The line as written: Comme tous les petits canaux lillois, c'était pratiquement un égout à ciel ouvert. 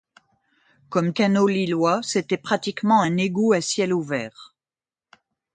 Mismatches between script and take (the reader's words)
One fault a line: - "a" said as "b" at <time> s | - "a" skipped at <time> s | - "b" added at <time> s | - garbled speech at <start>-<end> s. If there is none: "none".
- "tous les petits" skipped at 1.1 s